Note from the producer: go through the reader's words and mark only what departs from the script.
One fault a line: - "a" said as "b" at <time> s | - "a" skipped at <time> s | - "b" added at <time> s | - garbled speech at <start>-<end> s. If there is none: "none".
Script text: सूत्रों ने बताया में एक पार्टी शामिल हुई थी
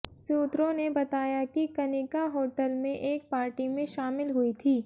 - "कि कनिका होटल" added at 1.5 s
- "में" added at 3.7 s